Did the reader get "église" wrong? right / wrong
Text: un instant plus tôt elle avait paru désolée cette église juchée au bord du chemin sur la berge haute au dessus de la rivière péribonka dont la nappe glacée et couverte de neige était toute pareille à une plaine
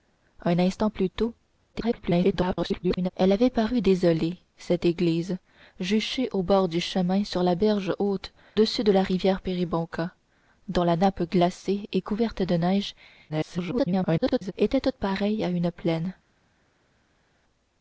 right